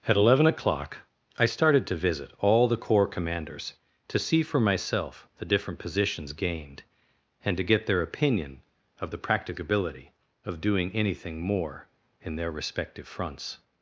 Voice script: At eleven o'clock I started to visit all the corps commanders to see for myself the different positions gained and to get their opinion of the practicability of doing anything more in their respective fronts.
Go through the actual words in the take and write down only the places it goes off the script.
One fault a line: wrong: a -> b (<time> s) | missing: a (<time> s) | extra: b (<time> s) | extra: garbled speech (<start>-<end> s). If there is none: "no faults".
no faults